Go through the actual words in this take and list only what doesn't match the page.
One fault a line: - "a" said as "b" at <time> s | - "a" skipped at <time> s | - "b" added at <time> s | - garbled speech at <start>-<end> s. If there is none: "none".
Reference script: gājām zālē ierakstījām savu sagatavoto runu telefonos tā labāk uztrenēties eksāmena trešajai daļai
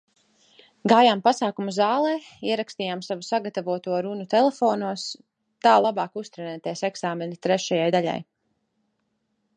- "pasākumu" added at 1.2 s